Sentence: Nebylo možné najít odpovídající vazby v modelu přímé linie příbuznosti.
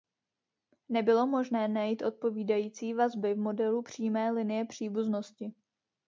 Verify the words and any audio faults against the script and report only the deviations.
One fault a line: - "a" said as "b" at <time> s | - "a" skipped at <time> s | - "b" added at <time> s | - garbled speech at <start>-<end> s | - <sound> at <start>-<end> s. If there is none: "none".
none